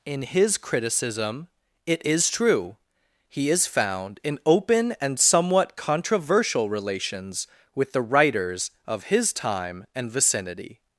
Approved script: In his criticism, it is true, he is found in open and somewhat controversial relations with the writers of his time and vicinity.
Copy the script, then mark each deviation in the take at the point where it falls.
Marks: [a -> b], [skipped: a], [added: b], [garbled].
In his criticism, it is true, he is found in open and somewhat controversial relations with the writers of his time and vicinity.